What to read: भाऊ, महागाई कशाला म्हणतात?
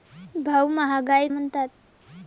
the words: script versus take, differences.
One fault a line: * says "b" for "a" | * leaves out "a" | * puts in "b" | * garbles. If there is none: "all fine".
* leaves out "कशाला"